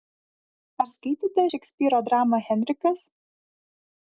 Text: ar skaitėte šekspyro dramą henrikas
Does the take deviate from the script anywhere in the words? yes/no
no